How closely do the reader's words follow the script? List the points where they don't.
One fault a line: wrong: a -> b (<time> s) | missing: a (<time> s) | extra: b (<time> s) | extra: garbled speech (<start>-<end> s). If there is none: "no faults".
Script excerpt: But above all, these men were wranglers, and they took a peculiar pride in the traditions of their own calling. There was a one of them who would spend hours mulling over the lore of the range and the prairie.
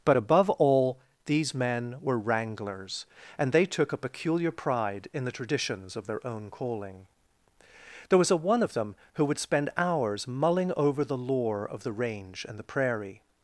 no faults